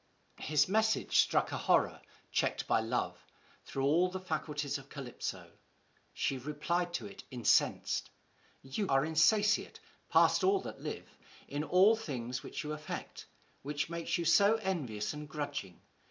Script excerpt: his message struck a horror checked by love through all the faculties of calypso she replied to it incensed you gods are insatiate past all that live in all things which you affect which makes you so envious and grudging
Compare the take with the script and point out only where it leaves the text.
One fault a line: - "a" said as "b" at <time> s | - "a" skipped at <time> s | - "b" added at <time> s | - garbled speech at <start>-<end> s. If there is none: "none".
- "gods" skipped at 8.9 s